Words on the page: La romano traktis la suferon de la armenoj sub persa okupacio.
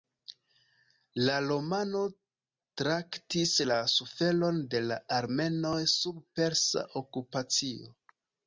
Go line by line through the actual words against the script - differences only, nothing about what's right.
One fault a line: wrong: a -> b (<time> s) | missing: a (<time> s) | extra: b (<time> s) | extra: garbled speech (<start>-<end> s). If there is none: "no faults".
no faults